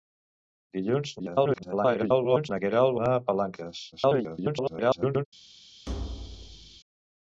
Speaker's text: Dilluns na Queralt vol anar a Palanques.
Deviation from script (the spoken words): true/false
true